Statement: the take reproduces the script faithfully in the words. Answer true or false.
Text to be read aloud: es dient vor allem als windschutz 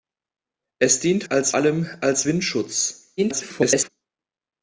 false